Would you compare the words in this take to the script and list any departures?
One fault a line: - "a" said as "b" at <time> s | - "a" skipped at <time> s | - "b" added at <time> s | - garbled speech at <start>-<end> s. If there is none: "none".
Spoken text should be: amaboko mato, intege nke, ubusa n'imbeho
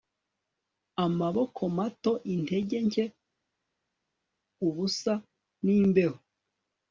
none